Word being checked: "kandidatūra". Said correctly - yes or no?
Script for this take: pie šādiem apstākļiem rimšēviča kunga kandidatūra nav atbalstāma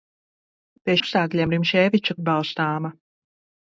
no